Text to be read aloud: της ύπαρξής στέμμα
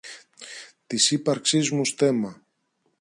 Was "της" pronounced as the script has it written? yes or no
yes